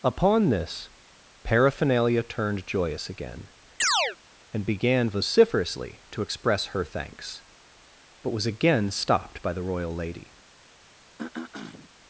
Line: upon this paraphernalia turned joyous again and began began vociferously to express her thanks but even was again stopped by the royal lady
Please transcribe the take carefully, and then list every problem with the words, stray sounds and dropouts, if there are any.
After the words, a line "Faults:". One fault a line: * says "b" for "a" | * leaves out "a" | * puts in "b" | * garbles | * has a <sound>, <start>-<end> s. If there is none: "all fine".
upon this paraphernalia turned joyous again and began vociferously to express her thanks but was again stopped by the royal lady
Faults:
* has a chirp, 3.8-4.2 s
* leaves out "began"
* leaves out "even"
* has a throat clearing, 11.2-11.9 s